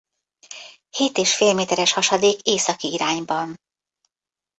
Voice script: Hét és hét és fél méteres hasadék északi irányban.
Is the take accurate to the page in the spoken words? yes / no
no